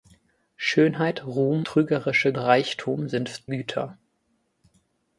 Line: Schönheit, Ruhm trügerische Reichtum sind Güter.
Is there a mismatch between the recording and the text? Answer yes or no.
no